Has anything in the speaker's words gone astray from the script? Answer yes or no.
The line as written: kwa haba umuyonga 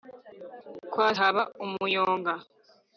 no